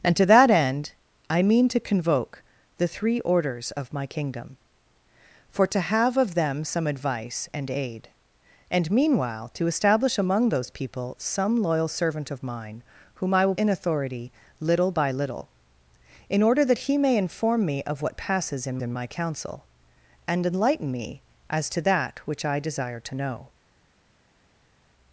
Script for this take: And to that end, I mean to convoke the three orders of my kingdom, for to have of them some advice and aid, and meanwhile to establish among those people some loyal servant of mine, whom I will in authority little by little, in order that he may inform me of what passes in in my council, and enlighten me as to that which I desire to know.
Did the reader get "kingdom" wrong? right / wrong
right